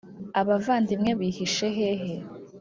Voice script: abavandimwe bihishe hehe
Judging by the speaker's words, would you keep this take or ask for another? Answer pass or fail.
pass